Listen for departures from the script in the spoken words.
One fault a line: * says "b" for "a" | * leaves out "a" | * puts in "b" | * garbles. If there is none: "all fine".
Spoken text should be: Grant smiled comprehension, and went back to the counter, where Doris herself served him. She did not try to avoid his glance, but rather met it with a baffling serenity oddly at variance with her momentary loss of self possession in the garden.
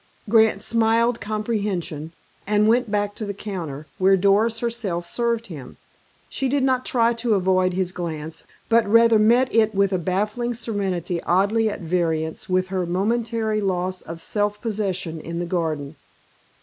all fine